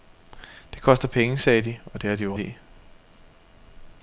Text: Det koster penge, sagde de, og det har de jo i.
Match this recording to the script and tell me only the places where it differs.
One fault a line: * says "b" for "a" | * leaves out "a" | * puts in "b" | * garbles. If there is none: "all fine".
all fine